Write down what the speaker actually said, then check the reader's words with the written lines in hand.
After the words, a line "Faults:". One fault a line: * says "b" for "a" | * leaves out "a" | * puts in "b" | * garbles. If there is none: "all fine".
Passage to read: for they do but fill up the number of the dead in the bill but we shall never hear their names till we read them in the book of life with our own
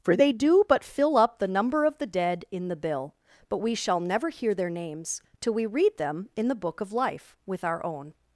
for they do but fill up the number of the dead in the bill but we shall never hear their names till we read them in the book of life with our own
Faults:
all fine